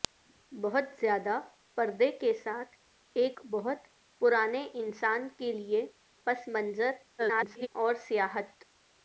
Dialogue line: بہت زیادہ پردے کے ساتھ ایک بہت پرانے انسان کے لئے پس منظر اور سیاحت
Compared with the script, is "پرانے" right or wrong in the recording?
right